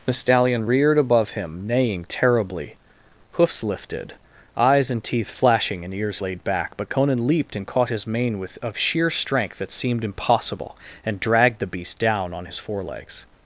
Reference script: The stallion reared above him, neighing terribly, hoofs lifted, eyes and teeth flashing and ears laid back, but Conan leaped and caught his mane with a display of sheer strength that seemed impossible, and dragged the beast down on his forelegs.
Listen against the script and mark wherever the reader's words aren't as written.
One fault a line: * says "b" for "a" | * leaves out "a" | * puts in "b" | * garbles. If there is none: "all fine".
* leaves out "a display"